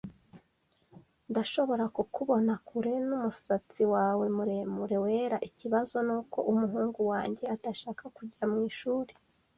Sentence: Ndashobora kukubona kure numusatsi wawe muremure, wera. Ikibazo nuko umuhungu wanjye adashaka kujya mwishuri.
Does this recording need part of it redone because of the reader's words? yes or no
no